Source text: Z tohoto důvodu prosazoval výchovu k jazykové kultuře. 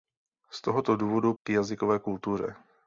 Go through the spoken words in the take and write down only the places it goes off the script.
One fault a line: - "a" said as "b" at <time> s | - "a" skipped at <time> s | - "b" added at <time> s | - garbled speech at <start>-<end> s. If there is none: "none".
- "prosazoval výchovu" skipped at 1.3 s